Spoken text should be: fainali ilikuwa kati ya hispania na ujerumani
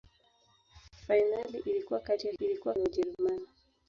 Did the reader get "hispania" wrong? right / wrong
wrong